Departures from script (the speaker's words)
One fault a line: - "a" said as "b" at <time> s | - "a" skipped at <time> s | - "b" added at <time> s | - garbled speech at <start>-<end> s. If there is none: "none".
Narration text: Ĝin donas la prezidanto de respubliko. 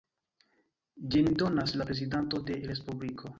none